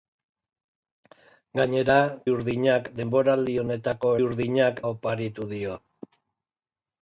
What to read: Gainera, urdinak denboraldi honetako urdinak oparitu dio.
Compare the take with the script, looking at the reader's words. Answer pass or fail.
pass